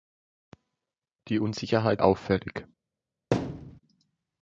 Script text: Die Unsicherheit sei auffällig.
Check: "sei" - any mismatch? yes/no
yes